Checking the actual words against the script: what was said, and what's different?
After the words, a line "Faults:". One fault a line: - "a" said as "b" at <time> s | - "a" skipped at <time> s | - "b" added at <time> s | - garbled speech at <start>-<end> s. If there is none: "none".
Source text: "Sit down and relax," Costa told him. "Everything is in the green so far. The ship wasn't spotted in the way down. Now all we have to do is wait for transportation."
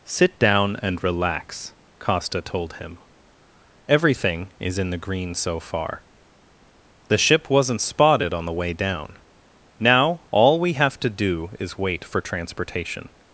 "Sit down and relax," Costa told him. "Everything is in the green so far. The ship wasn't spotted on the way down. Now all we have to do is wait for transportation."
Faults:
- "in" said as "on" at 8.3 s